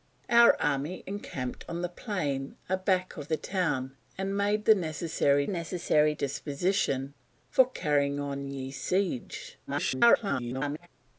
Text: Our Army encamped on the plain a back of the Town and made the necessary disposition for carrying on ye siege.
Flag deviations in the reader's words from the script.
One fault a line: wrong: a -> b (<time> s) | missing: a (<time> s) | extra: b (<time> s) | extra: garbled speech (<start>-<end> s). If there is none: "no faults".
extra: necessary (5.5 s)
extra: garbled speech (9.7-10.9 s)